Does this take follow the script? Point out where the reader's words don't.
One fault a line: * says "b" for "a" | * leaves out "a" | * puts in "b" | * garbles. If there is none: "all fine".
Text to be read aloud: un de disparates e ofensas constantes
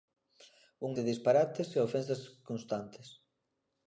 all fine